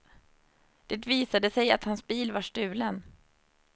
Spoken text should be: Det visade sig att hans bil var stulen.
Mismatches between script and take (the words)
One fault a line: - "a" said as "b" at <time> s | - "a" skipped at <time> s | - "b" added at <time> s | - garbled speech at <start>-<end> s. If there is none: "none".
none